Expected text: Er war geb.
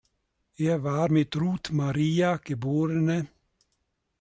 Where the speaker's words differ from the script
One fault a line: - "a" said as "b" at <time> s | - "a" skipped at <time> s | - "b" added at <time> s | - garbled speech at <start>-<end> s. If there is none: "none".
- "mit Ruth Maria" added at 1.1 s